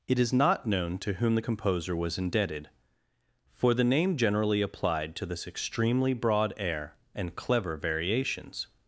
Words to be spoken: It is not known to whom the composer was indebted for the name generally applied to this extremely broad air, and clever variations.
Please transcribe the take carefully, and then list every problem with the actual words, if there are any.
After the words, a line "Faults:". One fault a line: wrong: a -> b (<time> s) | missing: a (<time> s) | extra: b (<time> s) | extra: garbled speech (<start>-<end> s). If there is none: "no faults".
It is not known to whom the composer was indebted for the name generally applied to this extremely broad air, and clever variations.
Faults:
no faults